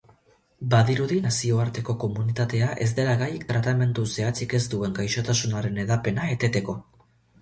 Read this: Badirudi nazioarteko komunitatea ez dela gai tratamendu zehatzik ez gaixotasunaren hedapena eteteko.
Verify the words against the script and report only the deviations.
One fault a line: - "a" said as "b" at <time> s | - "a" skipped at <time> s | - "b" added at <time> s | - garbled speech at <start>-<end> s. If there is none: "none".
- "duen" added at 4.7 s